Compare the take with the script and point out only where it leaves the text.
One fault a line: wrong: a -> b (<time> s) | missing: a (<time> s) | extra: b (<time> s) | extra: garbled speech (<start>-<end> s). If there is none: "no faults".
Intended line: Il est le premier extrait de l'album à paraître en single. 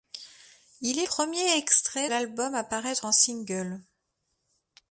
missing: le (1.1 s)
missing: de (2.1 s)